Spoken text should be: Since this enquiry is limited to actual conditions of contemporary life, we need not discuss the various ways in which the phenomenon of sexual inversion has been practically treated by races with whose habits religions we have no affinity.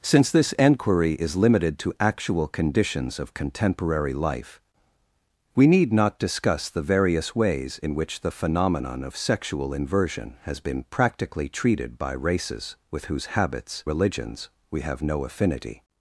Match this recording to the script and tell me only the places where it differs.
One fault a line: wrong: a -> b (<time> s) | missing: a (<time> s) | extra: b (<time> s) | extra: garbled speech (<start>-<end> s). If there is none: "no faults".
no faults